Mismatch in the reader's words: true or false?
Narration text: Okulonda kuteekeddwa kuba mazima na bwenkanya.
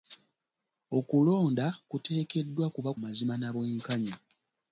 false